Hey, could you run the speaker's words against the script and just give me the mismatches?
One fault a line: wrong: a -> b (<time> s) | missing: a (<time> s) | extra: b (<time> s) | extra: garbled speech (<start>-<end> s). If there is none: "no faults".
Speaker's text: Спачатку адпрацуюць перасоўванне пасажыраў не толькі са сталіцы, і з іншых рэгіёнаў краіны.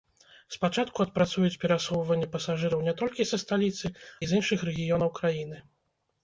no faults